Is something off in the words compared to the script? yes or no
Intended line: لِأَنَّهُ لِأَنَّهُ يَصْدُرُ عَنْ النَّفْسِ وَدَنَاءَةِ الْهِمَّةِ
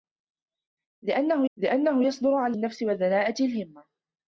no